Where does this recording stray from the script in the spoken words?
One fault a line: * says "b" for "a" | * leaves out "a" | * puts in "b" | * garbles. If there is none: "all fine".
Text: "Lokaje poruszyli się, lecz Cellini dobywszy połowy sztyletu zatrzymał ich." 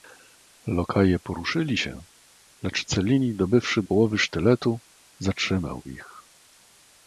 all fine